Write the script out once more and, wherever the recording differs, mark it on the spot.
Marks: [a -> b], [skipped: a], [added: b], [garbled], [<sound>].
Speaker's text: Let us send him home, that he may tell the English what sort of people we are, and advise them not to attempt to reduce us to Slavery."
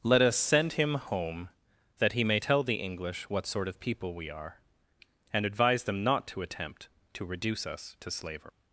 Let us send him home, that he may tell the English what sort of people we are, and advise them not to attempt to reduce us to Slavery."